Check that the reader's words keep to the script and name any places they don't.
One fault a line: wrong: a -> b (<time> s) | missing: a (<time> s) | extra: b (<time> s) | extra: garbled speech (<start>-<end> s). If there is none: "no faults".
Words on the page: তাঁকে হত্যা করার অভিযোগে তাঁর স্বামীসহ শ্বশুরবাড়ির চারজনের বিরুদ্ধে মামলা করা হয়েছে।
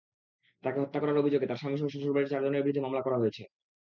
no faults